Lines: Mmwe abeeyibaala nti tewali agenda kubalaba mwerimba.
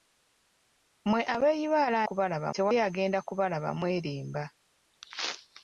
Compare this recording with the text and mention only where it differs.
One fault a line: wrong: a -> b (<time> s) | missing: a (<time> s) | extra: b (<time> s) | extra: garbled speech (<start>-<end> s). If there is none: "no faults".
wrong: nti -> kubalaba (2.1 s)